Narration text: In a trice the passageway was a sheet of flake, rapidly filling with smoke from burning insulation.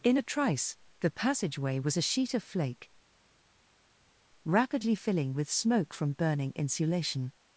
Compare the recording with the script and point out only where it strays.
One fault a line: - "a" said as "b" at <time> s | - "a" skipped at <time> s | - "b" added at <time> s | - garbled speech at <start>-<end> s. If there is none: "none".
none